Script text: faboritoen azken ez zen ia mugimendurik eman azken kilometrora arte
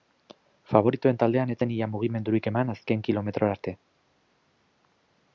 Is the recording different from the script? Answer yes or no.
yes